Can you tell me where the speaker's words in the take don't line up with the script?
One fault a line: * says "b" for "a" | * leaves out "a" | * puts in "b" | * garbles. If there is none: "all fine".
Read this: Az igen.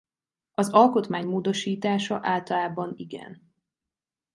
* puts in "alkotmány módosítása általában"